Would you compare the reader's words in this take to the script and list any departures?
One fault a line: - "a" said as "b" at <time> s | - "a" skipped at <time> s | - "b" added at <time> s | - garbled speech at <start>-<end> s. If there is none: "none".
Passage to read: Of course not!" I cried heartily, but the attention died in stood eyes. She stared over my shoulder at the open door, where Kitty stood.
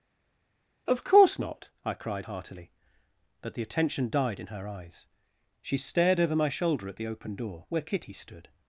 - "stood" said as "her" at 4.5 s